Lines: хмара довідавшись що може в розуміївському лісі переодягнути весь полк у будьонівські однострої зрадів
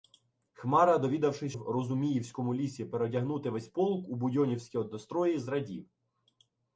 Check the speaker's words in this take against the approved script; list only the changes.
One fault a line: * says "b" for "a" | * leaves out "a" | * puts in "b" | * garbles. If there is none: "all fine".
* leaves out "що може"